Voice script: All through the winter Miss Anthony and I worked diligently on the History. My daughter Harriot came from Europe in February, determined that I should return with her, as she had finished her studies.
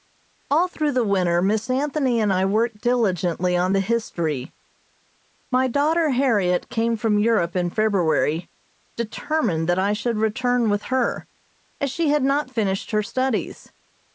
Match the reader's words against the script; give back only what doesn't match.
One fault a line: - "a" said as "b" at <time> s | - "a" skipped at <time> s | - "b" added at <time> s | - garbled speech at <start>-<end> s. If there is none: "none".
- "not" added at 12.2 s